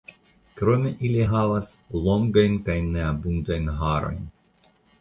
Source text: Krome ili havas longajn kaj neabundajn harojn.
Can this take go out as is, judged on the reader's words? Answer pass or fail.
pass